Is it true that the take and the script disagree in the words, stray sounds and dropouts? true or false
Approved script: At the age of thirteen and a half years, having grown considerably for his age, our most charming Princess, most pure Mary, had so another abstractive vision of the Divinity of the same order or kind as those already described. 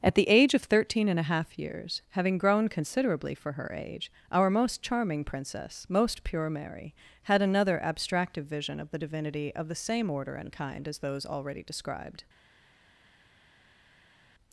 true